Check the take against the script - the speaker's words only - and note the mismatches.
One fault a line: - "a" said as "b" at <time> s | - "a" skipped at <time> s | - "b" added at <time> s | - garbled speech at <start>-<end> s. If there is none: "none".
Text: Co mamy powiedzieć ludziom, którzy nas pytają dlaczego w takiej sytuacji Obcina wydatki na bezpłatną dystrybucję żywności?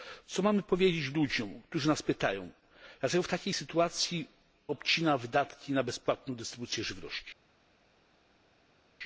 none